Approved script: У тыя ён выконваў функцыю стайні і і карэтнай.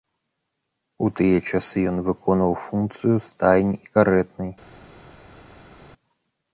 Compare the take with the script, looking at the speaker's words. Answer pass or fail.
fail